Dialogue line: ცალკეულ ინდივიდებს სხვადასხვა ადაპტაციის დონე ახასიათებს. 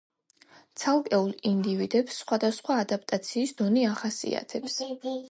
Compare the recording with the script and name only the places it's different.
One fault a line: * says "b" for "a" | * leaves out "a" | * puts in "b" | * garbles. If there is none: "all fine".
all fine